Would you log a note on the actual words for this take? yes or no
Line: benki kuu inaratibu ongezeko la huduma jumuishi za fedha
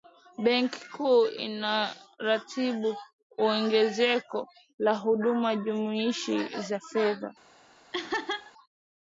no